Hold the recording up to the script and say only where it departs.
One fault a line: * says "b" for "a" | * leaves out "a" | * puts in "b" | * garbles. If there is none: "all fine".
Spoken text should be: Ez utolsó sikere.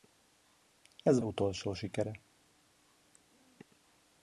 all fine